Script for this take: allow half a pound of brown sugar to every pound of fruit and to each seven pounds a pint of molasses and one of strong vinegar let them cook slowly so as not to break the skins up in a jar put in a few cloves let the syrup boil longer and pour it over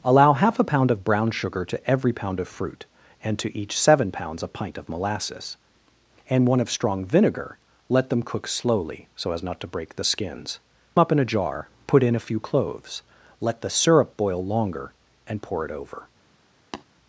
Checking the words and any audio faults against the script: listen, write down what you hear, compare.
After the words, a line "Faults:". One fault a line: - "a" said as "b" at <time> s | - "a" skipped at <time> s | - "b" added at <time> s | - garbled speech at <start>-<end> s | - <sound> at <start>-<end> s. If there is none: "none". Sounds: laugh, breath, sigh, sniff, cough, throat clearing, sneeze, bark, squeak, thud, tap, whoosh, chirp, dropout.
allow half a pound of brown sugar to every pound of fruit and to each seven pounds a pint of molasses and one of strong vinegar let them cook slowly so as not to break the skins up in a jar put in a few cloves let the syrup boil longer and pour it over
Faults:
- tap at 16.7-16.8 s